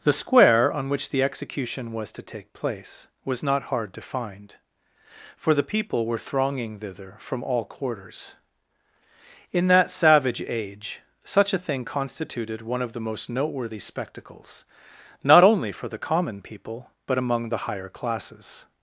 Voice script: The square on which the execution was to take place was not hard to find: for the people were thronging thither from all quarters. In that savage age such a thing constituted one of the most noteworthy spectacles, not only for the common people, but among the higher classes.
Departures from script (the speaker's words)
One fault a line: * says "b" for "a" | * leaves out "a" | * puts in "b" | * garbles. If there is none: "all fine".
all fine